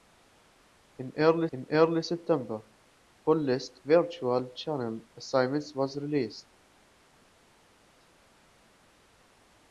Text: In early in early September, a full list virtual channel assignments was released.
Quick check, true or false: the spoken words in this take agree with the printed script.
true